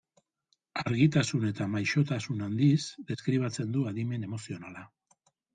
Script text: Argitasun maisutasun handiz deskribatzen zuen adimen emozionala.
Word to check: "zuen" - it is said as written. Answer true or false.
false